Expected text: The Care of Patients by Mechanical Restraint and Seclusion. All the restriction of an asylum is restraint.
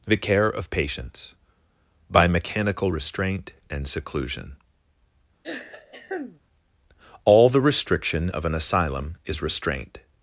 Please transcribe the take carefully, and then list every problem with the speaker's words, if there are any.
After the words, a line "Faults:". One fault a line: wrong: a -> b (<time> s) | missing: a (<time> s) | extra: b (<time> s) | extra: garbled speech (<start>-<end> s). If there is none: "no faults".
The Care of Patients by Mechanical Restraint and Seclusion. All the restriction of an asylum is restraint.
Faults:
no faults